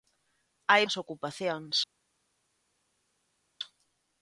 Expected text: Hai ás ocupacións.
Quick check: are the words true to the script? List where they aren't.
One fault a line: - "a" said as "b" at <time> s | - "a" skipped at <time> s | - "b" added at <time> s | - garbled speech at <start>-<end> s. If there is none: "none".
none